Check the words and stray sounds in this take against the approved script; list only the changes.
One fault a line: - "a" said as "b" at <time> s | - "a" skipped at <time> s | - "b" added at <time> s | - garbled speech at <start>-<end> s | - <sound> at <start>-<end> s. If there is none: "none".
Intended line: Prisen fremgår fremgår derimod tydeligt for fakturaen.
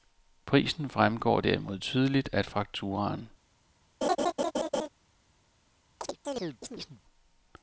- "fremgår" skipped at 1.4 s
- "for" said as "af" at 2.3 s
- laugh at 4.0-4.9 s
- chirp at 6.0-7.0 s